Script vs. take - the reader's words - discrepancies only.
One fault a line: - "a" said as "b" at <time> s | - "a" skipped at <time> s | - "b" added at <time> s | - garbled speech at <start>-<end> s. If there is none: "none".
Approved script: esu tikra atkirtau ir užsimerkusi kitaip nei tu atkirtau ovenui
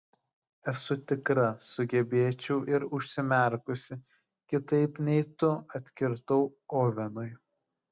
- "atkirtau" said as "sugebėčiau" at 1.6 s